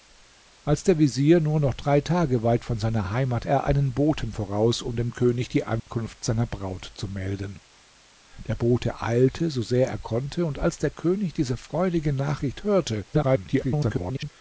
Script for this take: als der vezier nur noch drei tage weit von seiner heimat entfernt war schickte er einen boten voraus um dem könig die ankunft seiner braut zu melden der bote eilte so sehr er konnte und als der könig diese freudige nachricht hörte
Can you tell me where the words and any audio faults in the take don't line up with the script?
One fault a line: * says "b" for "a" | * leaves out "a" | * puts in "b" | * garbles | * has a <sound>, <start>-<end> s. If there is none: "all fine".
* leaves out "entfernt war schickte"
* has a dropout, 5.8-5.9 s
* garbles